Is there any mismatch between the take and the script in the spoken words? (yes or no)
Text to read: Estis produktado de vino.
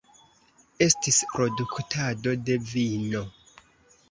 no